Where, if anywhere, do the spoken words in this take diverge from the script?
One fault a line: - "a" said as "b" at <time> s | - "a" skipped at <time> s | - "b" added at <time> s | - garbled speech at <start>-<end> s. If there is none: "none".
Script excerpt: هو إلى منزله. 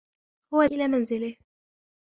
none